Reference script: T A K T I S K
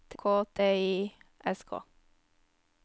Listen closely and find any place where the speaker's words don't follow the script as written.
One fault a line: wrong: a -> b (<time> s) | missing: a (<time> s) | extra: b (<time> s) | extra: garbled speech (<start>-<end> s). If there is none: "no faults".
missing: A (0.2 s)